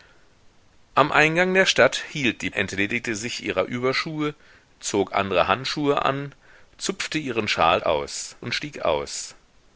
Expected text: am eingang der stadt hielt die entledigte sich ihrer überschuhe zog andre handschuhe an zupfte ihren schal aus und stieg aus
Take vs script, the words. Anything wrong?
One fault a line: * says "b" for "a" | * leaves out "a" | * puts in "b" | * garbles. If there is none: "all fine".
all fine